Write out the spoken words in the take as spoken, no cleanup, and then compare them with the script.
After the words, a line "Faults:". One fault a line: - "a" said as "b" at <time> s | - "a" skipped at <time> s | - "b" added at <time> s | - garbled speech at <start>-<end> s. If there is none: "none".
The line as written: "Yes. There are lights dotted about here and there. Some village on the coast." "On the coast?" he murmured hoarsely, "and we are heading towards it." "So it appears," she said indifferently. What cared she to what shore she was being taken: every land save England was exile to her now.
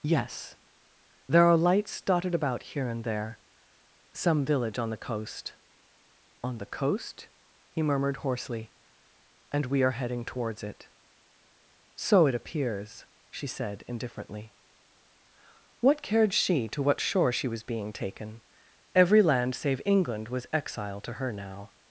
"Yes. There are lights dotted about here and there. Some village on the coast." "On the coast?" he murmured hoarsely, "and we are heading towards it." "So it appears," she said indifferently. What cared she to what shore she was being taken: every land save England was exile to her now.
Faults:
none